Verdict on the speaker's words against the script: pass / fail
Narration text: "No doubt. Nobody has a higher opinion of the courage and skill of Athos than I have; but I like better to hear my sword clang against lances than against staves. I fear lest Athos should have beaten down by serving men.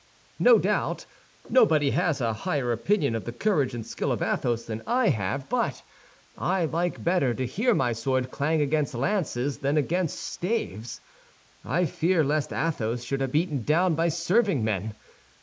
pass